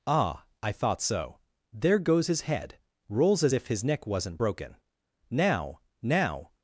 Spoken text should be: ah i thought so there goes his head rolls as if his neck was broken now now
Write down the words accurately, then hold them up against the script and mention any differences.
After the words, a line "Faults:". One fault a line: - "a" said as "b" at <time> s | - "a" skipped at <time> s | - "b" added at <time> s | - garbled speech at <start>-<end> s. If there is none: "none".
ah i thought so there goes his head rolls as if his neck wasn't broken now now
Faults:
- "was" said as "wasn't" at 4.1 s